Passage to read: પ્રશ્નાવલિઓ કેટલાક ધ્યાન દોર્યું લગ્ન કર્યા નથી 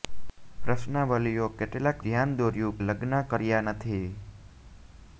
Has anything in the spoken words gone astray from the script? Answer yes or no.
no